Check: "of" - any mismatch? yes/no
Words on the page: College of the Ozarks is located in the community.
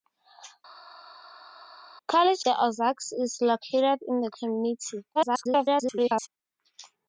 yes